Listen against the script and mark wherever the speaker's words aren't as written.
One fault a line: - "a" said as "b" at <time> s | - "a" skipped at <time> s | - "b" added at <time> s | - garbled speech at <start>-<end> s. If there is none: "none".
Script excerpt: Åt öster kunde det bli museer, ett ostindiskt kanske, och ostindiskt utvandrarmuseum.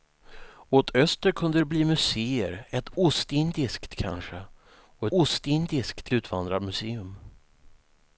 none